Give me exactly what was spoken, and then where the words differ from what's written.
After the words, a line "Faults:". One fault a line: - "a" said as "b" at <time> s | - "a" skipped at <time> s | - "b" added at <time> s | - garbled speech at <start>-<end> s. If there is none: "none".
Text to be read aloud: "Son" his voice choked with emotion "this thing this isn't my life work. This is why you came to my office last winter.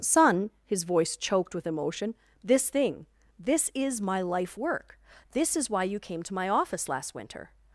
"Son" his voice choked with emotion "this thing this is my life work. This is why you came to my office last winter.
Faults:
- "isn't" said as "is" at 3.7 s